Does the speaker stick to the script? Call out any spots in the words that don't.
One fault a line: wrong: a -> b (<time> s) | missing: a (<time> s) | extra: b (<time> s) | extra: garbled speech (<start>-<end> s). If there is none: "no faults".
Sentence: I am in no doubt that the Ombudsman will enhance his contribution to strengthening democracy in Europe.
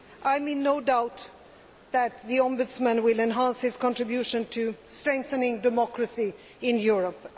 no faults